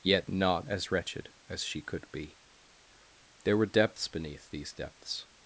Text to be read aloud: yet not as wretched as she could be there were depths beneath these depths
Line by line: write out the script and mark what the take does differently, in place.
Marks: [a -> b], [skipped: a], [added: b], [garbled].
yet not as wretched as she could be there were depths beneath these depths